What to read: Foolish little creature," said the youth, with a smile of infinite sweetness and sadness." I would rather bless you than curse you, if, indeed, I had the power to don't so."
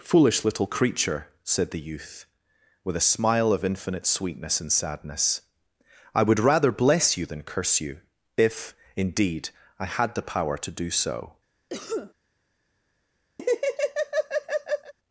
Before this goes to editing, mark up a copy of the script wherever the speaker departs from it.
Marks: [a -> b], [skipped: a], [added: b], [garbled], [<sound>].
Foolish little creature," said the youth, with a smile of infinite sweetness and sadness." I would rather bless you than curse you, if, indeed, I had the power to [don't -> do] so." [cough] [laugh]